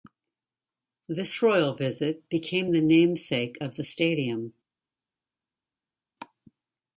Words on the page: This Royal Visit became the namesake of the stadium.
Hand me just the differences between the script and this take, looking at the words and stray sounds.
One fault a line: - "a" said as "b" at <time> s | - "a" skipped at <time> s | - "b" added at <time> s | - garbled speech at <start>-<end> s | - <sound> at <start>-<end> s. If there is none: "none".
none